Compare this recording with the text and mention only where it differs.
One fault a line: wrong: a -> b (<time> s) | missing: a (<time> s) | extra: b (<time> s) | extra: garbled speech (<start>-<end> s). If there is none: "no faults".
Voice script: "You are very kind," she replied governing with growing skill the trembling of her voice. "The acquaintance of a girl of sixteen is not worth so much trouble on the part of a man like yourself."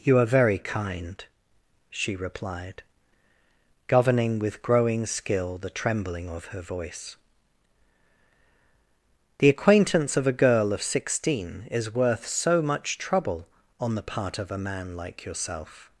missing: not (11.9 s)